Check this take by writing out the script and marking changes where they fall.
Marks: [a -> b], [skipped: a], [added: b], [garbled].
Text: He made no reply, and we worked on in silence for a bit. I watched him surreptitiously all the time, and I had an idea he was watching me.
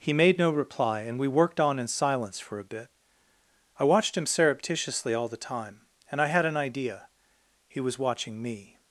He made no reply, and we worked on in silence for a bit. I watched him surreptitiously all the time, and I had an idea he was watching me.